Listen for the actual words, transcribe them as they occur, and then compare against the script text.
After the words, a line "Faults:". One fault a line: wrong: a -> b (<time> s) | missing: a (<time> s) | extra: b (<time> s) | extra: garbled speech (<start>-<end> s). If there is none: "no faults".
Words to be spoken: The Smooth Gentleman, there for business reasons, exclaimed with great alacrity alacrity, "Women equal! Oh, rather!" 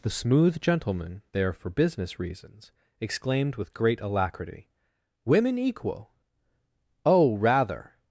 The Smooth Gentleman, there for business reasons, exclaimed with great alacrity, "Women equal! Oh, rather!"
Faults:
missing: alacrity (4.7 s)